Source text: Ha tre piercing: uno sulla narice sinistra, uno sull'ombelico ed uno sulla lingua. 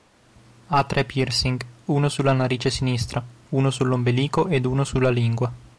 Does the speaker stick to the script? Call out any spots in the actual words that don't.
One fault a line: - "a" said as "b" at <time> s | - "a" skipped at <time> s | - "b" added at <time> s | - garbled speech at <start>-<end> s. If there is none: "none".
none